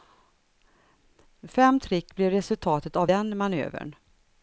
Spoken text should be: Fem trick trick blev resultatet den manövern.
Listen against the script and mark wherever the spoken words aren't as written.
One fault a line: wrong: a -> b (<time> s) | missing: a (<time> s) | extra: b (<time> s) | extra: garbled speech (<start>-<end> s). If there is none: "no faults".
missing: trick (2.1 s)
extra: av (3.0 s)